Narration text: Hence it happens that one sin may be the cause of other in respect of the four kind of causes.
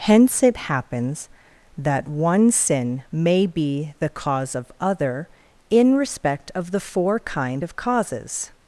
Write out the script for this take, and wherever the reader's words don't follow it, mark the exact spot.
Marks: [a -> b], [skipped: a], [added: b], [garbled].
Hence it happens that one sin may be the cause of other in respect of the four kind of causes.